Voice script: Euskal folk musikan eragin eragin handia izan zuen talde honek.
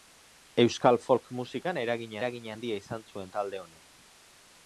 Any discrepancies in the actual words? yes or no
no